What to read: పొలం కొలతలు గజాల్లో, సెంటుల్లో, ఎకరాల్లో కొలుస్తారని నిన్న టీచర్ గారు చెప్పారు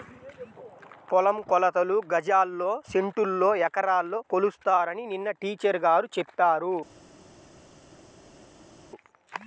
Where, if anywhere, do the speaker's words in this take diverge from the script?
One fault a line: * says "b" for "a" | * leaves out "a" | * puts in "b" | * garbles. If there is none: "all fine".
all fine